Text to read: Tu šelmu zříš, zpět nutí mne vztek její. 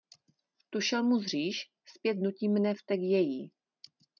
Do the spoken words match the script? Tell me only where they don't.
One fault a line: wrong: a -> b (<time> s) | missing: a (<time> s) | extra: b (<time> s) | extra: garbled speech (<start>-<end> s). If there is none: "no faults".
no faults